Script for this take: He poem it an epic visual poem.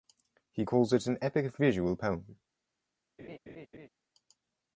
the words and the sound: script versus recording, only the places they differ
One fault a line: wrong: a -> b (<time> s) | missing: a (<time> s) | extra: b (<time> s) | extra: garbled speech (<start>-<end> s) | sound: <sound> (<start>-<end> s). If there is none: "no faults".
wrong: poem -> calls (0.6 s)
sound: laugh (3.2-3.9 s)